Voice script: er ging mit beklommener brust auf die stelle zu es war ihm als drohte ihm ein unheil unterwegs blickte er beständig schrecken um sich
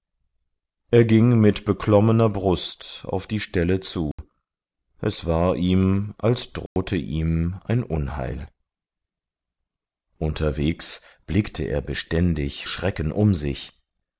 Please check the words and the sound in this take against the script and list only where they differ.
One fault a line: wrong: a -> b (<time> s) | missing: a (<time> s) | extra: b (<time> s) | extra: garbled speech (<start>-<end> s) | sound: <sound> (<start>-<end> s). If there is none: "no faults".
sound: dropout (4.1-4.2 s)
sound: dropout (6.7-6.8 s)